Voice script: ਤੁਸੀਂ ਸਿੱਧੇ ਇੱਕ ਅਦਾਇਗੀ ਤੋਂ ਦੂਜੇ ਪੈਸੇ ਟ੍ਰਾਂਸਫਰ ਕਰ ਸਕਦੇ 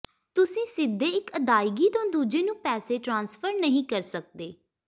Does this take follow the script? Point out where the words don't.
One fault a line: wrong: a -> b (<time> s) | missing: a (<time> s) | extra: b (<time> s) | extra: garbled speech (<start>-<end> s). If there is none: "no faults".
extra: ਨੂੰ (2.4 s)
extra: ਨਹੀਂ (3.5 s)